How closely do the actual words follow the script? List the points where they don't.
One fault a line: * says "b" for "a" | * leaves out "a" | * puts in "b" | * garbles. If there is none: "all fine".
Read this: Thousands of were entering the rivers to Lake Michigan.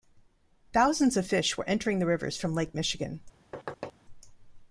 * puts in "fish"
* says "from" for "to"